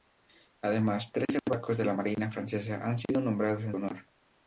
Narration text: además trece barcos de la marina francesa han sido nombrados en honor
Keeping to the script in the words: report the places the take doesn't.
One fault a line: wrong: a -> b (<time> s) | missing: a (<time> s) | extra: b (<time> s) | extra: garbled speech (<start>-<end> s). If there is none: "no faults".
no faults